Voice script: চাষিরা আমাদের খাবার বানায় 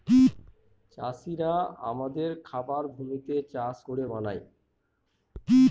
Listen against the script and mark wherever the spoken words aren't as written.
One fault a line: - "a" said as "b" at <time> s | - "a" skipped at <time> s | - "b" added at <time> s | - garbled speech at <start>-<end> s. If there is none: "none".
- "ভূমিতে চাষ করে" added at 2.9 s